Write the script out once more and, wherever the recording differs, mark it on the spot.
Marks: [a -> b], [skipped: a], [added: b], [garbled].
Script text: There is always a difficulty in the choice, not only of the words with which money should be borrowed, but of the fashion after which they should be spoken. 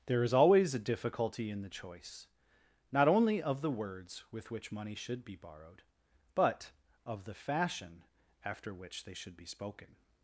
There is always a difficulty in the choice, not only of the words with which money should be borrowed, but of the fashion after which they should be spoken.